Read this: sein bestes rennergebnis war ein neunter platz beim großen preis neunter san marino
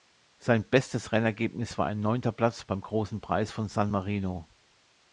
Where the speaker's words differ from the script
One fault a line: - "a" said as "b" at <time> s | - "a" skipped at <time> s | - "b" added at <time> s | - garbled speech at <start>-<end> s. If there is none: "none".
- "neunter" said as "von" at 3.5 s